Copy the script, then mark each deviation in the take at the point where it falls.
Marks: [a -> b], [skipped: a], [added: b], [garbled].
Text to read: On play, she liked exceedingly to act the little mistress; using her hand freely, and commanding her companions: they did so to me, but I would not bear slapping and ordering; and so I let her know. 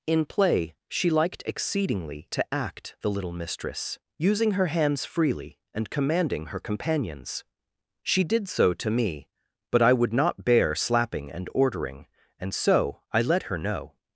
[On -> In] play, she liked exceedingly to act the little mistress; using her [hand -> hands] freely, and commanding her companions: [they -> she] did so to me, but I would not bear slapping and ordering; and so I let her know.